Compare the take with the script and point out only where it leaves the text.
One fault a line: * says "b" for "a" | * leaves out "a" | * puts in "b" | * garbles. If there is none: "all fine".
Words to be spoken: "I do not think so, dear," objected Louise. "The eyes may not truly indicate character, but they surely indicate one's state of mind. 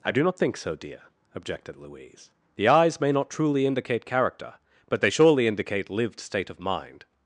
* says "lived" for "one's"